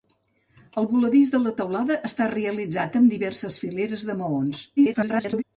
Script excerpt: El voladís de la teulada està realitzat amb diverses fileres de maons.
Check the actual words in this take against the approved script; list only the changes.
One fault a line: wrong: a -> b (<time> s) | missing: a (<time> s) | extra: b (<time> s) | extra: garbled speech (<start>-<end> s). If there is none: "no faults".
extra: garbled speech (4.8-5.4 s)